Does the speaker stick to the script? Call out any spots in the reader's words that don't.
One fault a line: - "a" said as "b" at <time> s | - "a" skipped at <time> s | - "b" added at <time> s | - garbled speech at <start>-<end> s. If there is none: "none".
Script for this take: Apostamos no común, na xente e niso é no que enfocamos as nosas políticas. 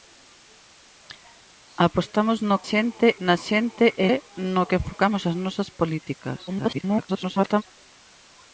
- "común" said as "xente" at 2.7 s
- "niso" skipped at 4.1 s
- garbled speech at 6.5-7.6 s